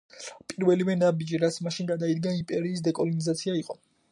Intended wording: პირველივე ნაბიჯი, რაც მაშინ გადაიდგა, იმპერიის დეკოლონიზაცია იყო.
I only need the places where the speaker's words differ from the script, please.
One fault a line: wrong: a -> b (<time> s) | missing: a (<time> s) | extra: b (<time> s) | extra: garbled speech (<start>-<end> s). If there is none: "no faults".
no faults